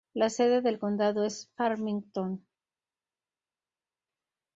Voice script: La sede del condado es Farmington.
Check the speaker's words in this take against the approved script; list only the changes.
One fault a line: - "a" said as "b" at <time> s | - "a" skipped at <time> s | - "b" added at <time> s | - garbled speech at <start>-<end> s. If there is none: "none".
none